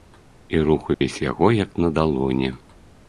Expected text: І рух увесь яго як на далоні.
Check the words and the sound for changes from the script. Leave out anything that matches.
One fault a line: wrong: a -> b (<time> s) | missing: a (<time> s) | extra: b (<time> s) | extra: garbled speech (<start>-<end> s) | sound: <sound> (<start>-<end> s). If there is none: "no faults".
sound: dropout (0.9-1.0 s)